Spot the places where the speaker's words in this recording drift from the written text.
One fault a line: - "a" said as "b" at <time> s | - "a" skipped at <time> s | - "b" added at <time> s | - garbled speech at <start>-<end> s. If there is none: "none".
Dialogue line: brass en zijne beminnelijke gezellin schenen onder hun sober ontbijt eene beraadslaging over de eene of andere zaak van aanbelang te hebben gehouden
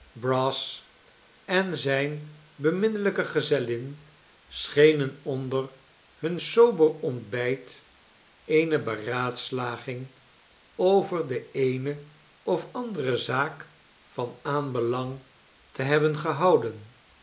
none